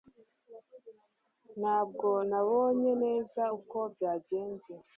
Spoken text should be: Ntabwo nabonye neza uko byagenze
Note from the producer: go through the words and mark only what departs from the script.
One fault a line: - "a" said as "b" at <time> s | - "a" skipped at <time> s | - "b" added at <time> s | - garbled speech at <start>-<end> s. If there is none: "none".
none